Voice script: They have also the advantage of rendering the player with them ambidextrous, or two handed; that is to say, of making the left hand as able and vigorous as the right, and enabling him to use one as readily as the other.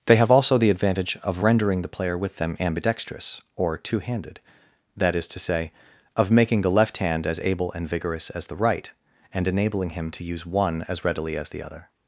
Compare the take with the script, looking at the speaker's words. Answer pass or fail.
pass